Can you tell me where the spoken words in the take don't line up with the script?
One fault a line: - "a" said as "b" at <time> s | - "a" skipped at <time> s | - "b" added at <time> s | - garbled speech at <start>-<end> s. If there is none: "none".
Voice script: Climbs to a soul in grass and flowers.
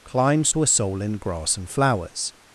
none